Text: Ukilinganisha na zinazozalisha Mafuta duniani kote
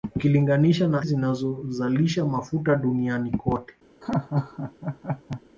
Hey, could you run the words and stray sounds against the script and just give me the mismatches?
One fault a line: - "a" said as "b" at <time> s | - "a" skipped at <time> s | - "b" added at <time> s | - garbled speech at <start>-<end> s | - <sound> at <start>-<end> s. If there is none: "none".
- laugh at 4.0-5.4 s